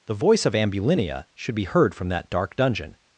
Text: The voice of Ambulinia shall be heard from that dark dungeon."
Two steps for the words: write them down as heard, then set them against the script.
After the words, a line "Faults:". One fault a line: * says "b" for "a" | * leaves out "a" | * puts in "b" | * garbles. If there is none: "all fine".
The voice of Ambulinia should be heard from that dark dungeon."
Faults:
* says "should" for "shall"